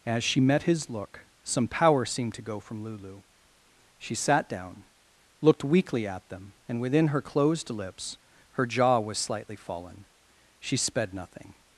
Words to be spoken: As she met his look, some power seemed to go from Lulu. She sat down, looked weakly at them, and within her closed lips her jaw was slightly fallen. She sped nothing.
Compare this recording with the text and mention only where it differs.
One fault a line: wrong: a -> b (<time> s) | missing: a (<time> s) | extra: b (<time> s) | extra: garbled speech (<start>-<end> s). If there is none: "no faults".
no faults